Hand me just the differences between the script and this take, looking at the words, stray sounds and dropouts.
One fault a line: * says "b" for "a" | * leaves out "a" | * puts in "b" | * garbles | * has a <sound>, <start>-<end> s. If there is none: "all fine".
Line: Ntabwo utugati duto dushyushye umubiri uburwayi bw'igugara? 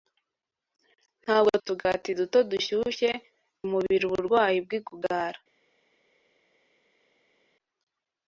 all fine